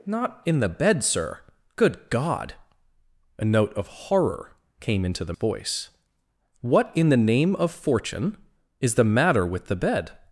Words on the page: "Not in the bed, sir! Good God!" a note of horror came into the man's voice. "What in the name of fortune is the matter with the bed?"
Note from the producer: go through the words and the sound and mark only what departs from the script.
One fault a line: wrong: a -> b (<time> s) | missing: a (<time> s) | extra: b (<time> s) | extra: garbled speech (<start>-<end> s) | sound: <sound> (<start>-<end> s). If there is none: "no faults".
missing: man's (5.3 s)